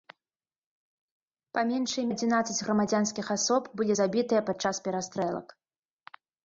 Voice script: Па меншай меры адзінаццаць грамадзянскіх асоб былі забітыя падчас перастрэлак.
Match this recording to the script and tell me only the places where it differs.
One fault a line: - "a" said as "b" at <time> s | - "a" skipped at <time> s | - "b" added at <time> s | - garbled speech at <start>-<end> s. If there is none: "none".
- "меры" skipped at 2.0 s